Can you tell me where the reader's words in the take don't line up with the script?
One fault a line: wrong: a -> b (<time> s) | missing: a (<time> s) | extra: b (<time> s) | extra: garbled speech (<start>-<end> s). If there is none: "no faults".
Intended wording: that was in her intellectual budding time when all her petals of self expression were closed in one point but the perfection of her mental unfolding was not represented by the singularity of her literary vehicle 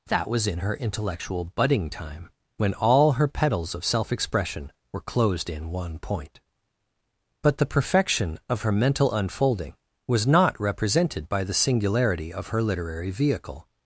no faults